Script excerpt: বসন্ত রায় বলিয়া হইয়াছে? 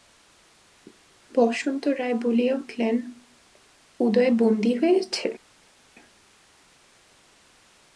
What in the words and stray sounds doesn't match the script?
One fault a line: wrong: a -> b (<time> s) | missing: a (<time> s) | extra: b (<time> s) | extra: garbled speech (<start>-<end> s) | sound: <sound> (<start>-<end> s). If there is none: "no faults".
extra: উঠিলেন উদয় বন্দী (2.5 s)